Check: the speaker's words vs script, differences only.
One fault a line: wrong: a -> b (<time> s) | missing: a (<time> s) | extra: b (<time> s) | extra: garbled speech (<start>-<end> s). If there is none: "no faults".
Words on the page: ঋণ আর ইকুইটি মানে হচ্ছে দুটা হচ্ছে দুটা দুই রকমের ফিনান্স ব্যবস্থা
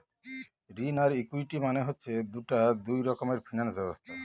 missing: হচ্ছে দুটা (2.6 s)